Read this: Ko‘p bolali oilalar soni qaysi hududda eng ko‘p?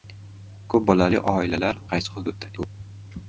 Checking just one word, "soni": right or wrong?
wrong